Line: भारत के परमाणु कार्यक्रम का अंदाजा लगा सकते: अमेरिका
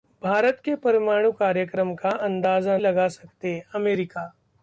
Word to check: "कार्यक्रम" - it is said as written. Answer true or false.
true